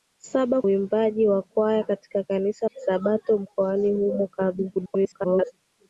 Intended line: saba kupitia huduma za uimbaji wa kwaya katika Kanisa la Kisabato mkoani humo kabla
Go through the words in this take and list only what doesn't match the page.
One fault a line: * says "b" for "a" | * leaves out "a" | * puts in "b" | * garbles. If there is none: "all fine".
* leaves out "kupitia huduma za"
* leaves out "la"
* garbles